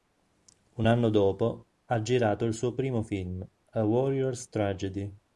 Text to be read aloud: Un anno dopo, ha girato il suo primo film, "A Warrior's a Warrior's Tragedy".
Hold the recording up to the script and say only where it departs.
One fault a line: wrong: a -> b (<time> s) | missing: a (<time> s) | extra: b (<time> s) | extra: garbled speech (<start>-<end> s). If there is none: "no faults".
missing: a Warrior's (4.5 s)